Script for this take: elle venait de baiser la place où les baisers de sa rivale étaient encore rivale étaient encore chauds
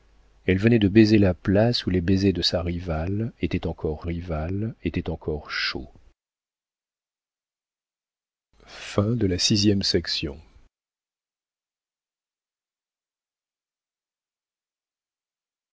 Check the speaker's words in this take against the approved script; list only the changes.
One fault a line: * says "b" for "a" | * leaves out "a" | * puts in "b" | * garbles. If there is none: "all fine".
all fine